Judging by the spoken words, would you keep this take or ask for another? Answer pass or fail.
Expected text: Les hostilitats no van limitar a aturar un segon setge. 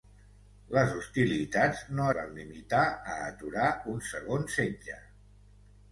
pass